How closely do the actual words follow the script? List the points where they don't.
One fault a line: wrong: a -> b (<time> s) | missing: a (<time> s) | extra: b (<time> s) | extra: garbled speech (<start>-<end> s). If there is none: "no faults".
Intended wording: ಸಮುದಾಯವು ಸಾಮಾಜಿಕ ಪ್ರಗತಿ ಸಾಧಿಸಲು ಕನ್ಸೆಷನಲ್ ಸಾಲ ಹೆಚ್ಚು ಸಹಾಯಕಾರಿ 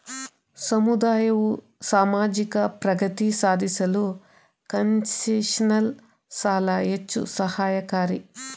no faults